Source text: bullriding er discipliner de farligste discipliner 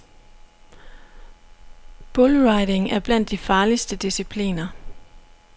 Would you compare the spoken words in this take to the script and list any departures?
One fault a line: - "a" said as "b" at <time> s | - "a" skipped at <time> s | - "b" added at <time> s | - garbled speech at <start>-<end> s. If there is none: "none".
- "discipliner" said as "blandt" at 3.0 s